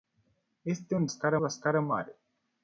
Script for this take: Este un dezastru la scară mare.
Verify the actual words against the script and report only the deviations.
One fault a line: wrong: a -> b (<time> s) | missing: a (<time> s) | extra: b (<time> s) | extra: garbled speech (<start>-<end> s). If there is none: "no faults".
wrong: dezastru -> scară (1.1 s)